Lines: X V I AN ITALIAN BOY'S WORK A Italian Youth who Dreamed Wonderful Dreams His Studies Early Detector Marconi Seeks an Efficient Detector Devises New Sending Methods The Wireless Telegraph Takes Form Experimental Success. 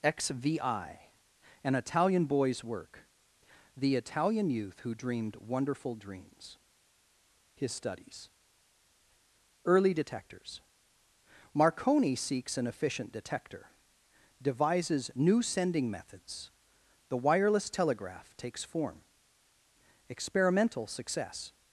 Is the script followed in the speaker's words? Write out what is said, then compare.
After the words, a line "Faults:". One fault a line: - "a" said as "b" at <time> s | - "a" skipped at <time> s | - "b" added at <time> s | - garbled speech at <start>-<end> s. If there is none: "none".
X V I AN ITALIAN BOY'S WORK The Italian Youth who Dreamed Wonderful Dreams His Studies Early Detectors Marconi Seeks an Efficient Detector Devises New Sending Methods The Wireless Telegraph Takes Form Experimental Success.
Faults:
- "A" said as "The" at 3.8 s
- "Detector" said as "Detectors" at 9.9 s